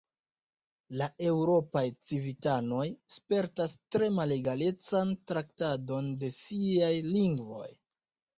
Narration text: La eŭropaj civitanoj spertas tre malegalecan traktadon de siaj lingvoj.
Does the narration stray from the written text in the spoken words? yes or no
no